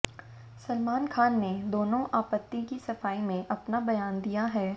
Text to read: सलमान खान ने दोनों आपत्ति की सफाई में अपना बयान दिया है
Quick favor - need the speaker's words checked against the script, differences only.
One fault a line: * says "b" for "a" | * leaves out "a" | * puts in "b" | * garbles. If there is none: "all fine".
all fine